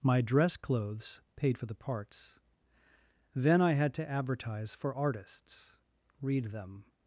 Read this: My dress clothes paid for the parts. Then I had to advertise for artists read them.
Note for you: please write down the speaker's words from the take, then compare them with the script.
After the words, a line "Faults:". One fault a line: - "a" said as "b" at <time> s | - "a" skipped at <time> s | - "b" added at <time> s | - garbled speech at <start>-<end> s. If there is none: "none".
My dress clothes paid for the parts. Then I had to advertise for artists read them.
Faults:
none